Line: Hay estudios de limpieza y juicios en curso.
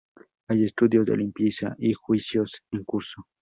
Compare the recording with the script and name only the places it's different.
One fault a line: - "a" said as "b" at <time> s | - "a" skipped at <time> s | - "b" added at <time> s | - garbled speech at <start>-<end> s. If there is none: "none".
none